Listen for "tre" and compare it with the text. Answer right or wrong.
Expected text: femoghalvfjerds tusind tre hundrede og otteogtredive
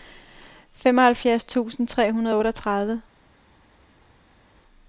right